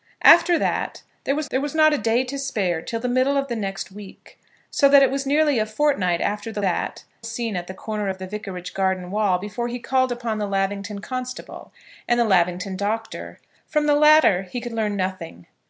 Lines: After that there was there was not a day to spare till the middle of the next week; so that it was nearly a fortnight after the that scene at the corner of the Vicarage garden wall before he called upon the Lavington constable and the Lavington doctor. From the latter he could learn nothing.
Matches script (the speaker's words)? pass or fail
pass